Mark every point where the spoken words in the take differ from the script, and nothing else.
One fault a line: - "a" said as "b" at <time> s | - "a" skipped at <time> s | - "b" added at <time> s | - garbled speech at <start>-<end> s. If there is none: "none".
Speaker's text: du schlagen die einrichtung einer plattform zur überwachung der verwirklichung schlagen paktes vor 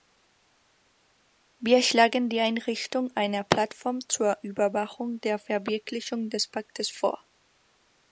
- "du" said as "wir" at 1.6 s
- "schlagen" said as "des" at 6.3 s